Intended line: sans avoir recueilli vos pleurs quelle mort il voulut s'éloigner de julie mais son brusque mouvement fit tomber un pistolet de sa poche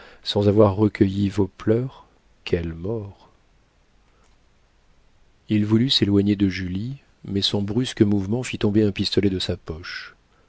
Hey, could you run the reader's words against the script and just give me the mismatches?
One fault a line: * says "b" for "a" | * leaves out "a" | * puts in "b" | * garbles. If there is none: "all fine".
all fine